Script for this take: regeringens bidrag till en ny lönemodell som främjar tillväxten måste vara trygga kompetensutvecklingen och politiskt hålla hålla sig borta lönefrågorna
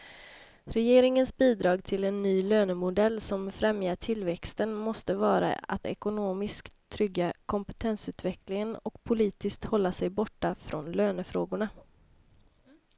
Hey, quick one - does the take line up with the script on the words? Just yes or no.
no